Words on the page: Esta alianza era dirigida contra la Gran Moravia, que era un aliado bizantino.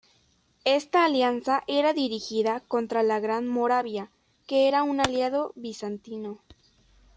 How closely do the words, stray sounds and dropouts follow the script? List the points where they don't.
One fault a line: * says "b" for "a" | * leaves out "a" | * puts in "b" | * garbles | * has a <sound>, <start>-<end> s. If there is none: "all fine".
all fine